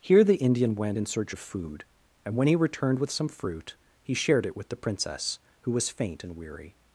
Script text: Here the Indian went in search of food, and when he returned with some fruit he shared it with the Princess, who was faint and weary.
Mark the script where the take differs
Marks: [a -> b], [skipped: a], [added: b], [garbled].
Here the Indian went in search of food, and when he returned with some fruit he shared it with the Princess, who was faint and weary.